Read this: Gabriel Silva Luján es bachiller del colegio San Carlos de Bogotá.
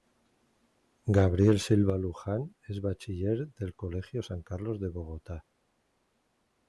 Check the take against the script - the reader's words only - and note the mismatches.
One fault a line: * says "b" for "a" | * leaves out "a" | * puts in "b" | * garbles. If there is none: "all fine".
all fine